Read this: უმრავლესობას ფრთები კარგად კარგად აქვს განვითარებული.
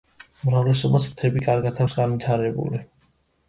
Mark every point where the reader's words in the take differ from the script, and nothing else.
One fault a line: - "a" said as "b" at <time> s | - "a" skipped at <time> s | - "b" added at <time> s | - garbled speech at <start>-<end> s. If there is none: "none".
- "კარგად" skipped at 1.8 s